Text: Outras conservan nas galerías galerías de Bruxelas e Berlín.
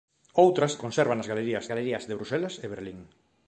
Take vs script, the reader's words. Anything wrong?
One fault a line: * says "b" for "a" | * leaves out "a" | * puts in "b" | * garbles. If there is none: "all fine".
all fine